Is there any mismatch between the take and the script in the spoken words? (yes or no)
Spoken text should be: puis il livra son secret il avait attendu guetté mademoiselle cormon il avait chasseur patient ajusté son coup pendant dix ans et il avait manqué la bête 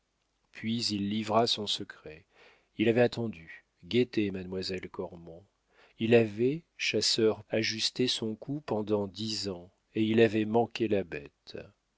yes